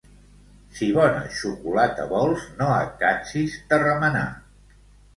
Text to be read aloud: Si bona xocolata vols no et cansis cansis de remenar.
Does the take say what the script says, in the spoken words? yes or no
no